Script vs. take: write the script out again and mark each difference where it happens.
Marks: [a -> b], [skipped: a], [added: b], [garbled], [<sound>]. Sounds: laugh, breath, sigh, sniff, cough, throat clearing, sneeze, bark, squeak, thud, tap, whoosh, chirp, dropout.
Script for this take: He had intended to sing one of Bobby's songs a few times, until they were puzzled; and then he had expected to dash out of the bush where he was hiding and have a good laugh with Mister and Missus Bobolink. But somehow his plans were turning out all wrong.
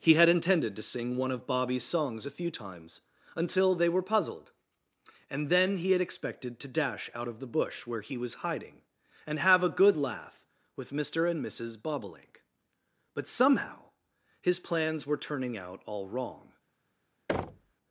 He had intended to sing one of Bobby's songs a few times, until they were puzzled; and then he had expected to dash out of the bush where he was hiding and have a good laugh with Mister and Missus Bobolink. But somehow his plans were turning out all wrong. [thud]